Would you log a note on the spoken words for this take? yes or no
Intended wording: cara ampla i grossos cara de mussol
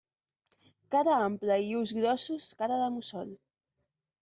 yes